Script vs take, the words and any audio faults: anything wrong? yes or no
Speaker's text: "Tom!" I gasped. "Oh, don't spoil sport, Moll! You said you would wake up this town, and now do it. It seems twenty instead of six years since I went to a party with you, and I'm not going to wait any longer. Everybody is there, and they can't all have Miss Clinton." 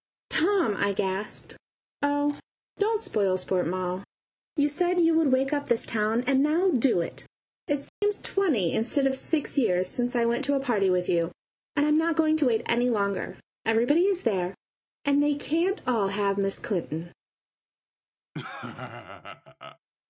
yes